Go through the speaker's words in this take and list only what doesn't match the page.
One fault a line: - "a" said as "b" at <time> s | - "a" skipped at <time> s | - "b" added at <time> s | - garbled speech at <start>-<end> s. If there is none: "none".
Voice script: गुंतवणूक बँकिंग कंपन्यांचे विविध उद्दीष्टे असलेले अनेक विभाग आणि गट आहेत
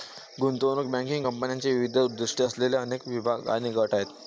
none